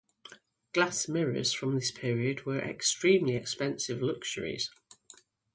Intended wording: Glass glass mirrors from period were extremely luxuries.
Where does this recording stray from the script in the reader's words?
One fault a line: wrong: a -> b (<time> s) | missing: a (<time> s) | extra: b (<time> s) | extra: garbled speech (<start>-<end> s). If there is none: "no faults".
missing: glass (1.1 s)
extra: this (1.8 s)
extra: expensive (3.3 s)